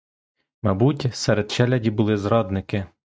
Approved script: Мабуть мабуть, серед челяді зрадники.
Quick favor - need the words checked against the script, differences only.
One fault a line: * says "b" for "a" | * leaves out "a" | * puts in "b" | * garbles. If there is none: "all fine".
* leaves out "мабуть"
* puts in "були"